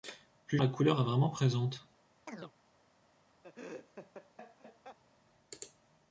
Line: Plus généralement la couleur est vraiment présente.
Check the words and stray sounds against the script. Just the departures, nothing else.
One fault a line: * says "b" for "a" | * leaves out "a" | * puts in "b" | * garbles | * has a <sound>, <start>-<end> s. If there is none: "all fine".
* leaves out "généralement"
* has a chirp, 2.3-2.5 s
* has a laugh, 3.4-5.0 s